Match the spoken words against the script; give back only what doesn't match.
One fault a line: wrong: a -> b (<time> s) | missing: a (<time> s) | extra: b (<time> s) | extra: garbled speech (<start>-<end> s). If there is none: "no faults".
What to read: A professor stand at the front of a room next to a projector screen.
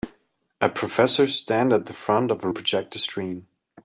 missing: room next to (2.5 s)